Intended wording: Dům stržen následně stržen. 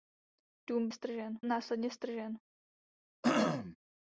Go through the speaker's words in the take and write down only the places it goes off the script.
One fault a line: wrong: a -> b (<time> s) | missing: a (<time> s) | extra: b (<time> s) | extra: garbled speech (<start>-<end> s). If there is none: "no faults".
no faults